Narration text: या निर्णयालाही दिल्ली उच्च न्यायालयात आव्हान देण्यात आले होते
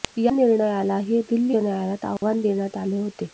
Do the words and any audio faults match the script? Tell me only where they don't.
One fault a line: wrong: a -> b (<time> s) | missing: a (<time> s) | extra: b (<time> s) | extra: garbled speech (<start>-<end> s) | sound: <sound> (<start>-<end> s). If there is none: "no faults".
missing: उच्च (1.6 s)
sound: dropout (2.2-2.2 s)